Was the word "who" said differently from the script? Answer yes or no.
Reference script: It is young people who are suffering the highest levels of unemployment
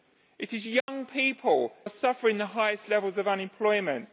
yes